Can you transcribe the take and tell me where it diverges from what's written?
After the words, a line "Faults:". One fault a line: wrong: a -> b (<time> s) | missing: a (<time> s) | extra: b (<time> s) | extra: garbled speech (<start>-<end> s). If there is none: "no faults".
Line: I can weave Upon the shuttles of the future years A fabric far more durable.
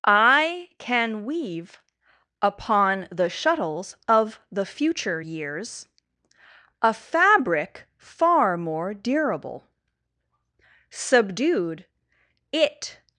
I can weave Upon the shuttles of the future years A fabric far more durable. Subdued, It
Faults:
extra: Subdued It (10.9 s)